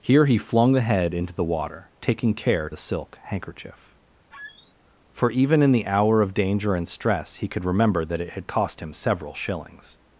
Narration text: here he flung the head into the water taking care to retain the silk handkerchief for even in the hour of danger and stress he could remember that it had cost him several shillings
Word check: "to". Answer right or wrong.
wrong